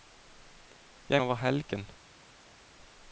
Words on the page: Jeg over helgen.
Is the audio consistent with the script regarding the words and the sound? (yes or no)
yes